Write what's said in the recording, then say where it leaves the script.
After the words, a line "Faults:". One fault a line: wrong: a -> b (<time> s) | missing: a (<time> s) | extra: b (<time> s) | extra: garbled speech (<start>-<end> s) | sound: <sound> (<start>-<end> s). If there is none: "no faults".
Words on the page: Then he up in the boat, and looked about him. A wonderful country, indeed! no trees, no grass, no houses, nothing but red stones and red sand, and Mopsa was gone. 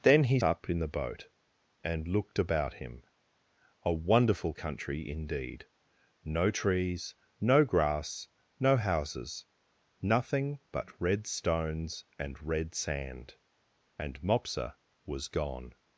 Then he up in the boat, and looked about him. A wonderful country, indeed! no trees, no grass, no houses, nothing but red stones and red sand, and Mopsa was gone.
Faults:
no faults